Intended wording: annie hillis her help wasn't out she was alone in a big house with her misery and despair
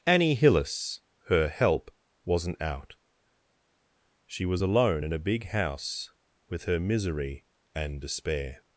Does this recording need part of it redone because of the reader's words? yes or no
no